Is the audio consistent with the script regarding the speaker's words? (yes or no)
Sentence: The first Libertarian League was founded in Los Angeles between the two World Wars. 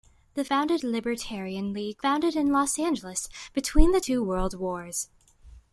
no